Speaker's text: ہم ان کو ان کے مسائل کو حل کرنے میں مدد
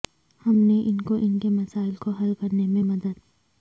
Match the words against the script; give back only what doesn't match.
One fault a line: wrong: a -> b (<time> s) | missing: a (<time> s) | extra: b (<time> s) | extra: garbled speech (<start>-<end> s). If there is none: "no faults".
extra: نے (0.6 s)